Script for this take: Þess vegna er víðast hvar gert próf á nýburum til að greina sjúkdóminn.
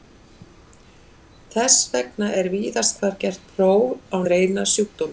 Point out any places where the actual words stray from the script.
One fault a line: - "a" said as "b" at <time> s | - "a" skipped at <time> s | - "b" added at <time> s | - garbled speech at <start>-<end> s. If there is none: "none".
- "nýburum til að" skipped at 4.2 s